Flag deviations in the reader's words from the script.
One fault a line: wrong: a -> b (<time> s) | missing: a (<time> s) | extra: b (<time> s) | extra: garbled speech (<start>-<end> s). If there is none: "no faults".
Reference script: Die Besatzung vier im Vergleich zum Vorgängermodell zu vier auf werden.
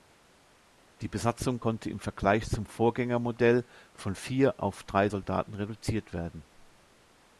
wrong: vier -> konnte (1.6 s)
wrong: zu -> von (4.0 s)
extra: drei Soldaten reduziert (4.8 s)